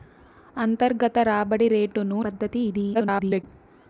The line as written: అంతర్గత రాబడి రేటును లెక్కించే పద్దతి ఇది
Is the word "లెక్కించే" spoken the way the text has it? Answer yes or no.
no